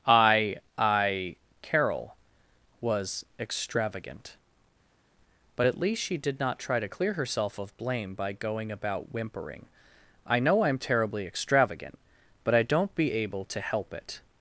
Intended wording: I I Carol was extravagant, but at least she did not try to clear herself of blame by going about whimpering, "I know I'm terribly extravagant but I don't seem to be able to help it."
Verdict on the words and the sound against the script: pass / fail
fail